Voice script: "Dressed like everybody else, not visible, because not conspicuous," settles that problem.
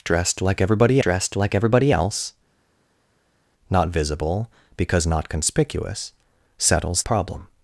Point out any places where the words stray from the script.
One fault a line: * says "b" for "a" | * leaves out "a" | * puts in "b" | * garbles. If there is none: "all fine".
* puts in "dressed like everybody"
* leaves out "that"